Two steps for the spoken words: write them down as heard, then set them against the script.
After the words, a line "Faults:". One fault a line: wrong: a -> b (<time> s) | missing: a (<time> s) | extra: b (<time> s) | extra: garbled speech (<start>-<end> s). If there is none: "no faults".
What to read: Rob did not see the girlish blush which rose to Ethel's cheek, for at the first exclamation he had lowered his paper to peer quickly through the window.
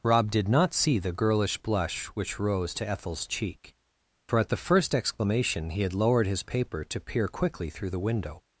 Rob did not see the girlish blush which rose to Ethel's cheek, for at the first exclamation he had lowered his paper to peer quickly through the window.
Faults:
no faults